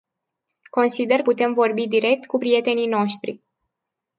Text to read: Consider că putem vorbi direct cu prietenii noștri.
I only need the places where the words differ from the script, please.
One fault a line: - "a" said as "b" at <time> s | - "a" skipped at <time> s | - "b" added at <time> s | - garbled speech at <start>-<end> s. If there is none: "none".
- "că" skipped at 1.2 s